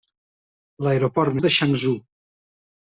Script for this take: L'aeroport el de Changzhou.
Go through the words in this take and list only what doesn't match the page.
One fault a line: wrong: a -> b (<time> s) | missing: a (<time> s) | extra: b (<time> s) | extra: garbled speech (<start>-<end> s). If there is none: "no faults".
no faults